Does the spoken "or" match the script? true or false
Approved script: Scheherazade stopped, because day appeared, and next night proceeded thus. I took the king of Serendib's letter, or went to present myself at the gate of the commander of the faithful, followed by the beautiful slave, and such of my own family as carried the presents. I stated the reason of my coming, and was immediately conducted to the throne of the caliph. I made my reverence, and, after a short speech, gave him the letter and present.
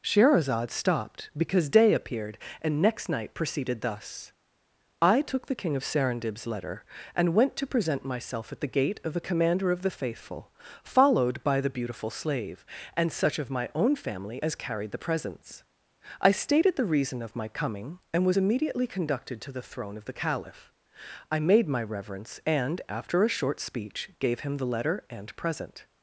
false